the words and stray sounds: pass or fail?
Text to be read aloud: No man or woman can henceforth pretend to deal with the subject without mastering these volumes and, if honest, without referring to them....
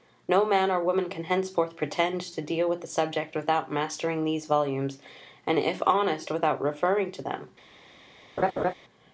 fail